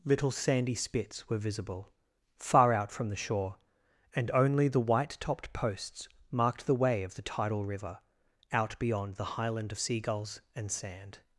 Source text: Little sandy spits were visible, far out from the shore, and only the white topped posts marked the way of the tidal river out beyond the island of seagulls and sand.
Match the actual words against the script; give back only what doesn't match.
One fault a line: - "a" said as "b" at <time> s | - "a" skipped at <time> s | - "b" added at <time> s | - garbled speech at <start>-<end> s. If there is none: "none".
- "island" said as "highland" at 9.3 s